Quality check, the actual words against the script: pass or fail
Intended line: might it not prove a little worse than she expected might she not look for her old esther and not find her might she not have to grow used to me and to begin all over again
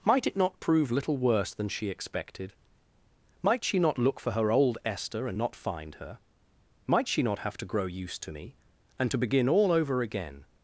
fail